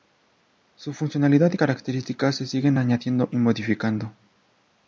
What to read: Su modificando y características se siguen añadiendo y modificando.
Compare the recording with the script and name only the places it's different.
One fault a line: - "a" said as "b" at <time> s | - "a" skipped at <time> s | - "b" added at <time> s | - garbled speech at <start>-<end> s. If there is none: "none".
- "modificando" said as "funcionalidad" at 0.9 s